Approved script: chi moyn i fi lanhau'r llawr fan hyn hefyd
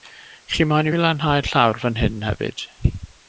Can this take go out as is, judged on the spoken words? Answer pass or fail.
pass